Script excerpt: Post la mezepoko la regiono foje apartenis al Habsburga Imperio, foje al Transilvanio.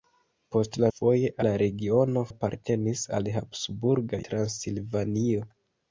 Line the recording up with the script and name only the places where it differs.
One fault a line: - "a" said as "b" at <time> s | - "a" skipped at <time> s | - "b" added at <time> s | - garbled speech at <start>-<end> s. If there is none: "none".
- "mezepoko" said as "foje" at 1.0 s
- "foje" skipped at 2.2 s
- "Imperio foje al" skipped at 4.2 s